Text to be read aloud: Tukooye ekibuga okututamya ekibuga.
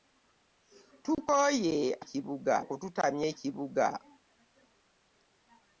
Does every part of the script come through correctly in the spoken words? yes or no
yes